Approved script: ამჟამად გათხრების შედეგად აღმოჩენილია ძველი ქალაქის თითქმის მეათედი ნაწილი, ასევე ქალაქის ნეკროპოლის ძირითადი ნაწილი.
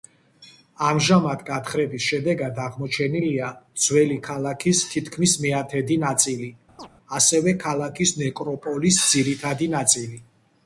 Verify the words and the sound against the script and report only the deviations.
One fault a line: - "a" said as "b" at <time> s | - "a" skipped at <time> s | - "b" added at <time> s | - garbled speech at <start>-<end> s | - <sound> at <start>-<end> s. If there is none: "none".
- chirp at 6.8-6.9 s